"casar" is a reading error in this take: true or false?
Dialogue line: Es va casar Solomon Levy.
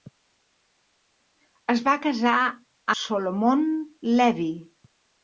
false